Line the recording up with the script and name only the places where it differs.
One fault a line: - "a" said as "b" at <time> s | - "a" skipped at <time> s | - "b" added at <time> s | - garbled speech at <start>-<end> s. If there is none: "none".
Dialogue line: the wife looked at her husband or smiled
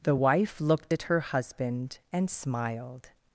- "or" said as "and" at 2.1 s